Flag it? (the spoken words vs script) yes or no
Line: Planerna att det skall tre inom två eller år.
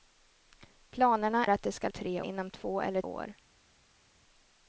no